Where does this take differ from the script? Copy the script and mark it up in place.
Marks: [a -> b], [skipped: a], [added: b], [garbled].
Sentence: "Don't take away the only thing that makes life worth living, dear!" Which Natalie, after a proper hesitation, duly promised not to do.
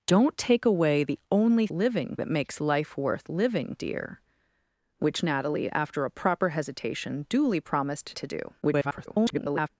"Don't take away the only [thing -> living] that makes life worth living, dear!" Which Natalie, after a proper hesitation, duly promised [skipped: not] to do. [garbled]